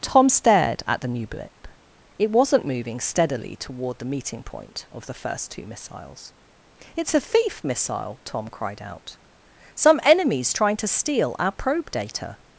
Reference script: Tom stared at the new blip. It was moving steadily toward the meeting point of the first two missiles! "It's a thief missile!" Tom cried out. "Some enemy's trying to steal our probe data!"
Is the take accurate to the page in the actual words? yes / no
no